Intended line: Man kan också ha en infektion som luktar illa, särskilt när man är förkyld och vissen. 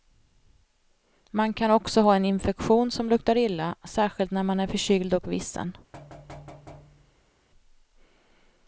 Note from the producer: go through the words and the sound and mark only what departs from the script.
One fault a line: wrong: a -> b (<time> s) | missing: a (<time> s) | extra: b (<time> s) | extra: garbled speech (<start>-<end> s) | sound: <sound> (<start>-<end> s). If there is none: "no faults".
sound: thud (5.9-7.3 s)